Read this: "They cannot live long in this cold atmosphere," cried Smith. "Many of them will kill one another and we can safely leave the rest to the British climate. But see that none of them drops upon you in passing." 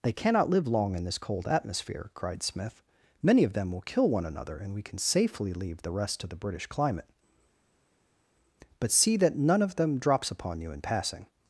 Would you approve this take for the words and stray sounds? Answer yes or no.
yes